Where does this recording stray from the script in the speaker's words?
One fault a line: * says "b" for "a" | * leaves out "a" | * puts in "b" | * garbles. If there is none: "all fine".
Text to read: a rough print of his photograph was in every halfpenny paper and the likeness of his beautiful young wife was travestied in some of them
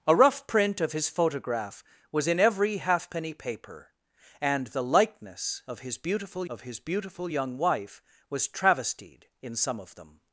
* puts in "of his beautiful"